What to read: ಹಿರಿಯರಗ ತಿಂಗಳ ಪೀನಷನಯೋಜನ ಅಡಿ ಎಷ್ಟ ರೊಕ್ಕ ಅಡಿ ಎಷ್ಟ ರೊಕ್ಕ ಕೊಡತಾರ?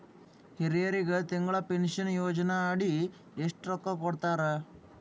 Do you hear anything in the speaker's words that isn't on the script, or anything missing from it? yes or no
yes